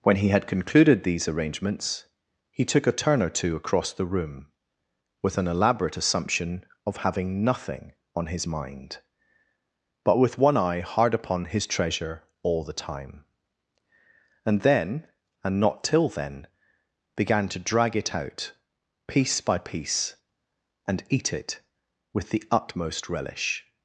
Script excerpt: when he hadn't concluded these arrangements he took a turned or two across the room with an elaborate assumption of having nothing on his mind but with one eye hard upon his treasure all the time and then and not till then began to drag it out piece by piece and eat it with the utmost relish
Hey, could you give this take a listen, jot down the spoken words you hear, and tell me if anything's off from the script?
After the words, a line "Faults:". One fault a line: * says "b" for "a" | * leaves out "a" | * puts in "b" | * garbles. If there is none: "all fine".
when he had concluded these arrangements he took a turn or two across the room with an elaborate assumption of having nothing on his mind but with one eye hard upon his treasure all the time and then and not till then began to drag it out piece by piece and eat it with the utmost relish
Faults:
* says "had" for "hadn't"
* says "turn" for "turned"